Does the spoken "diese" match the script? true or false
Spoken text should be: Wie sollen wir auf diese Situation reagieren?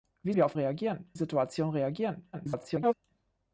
false